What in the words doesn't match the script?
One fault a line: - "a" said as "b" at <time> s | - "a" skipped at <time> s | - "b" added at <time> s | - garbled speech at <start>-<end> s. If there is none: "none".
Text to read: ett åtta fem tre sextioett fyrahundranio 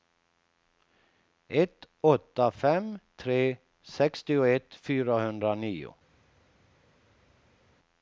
none